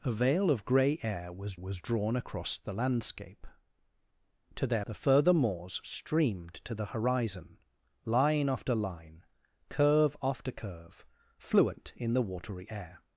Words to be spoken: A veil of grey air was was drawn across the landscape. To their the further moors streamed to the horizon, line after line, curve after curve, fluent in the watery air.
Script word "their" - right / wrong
right